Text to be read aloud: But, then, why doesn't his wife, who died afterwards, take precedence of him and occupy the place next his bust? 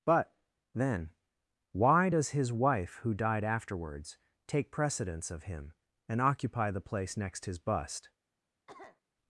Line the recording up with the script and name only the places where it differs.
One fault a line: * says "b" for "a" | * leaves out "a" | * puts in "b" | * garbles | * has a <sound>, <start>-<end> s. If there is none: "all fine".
* says "does" for "doesn't"
* has a cough, 8.7-9.0 s